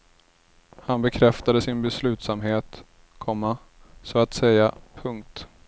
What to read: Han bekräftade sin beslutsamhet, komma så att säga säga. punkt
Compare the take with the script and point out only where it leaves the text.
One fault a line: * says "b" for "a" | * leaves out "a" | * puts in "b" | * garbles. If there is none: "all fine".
* leaves out "säga"